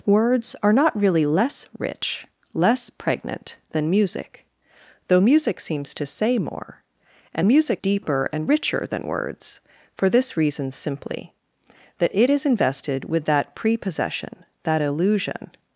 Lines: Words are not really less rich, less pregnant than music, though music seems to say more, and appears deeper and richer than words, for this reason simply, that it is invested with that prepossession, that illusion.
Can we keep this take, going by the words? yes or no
no